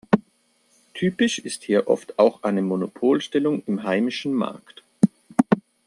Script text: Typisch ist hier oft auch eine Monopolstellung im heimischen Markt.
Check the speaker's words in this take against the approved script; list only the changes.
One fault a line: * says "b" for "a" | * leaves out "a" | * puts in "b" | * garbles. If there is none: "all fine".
all fine